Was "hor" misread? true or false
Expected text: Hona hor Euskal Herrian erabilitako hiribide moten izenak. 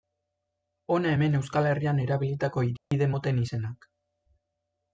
true